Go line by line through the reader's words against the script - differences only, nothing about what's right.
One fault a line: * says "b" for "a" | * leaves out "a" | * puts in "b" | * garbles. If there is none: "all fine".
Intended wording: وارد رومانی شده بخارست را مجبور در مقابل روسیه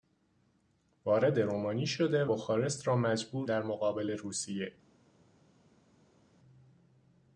all fine